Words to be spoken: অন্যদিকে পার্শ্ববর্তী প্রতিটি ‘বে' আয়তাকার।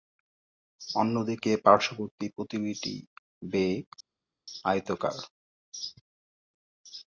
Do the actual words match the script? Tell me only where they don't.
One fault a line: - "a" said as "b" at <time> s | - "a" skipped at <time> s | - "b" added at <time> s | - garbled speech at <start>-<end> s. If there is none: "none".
none